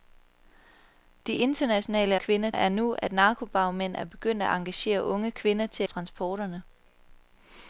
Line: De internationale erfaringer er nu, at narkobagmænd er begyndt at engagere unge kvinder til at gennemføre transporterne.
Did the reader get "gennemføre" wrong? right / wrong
wrong